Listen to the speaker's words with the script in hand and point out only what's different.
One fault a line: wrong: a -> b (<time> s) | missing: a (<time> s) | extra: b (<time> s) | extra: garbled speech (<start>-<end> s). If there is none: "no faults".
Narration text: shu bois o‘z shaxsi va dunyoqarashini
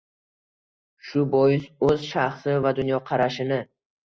no faults